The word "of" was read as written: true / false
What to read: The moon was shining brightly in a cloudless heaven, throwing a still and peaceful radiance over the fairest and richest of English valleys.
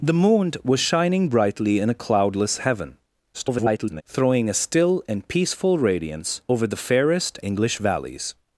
false